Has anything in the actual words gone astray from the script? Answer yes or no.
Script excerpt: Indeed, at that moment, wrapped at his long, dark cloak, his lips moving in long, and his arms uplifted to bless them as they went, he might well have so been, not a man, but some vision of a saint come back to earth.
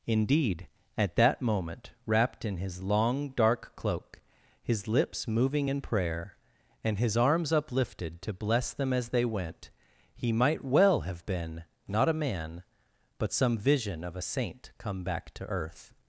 yes